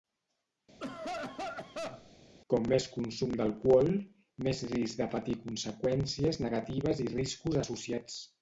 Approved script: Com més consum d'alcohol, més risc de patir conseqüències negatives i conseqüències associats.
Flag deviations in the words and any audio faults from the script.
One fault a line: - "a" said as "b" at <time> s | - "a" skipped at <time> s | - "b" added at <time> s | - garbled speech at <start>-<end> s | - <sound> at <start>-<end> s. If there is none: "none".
- cough at 0.8-2.1 s
- "conseqüències" said as "riscos" at 7.1 s